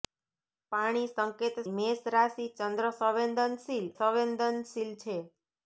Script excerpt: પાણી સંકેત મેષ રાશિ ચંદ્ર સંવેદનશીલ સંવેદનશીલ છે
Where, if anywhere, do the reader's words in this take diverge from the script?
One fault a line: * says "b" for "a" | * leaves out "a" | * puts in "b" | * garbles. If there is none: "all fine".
all fine